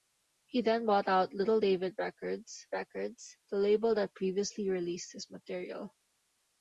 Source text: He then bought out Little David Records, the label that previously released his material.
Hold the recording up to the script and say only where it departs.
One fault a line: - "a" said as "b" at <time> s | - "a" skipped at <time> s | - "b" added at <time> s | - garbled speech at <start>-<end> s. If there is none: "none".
- "Records" added at 2.7 s